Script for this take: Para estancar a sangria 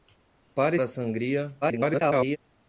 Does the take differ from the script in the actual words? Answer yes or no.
yes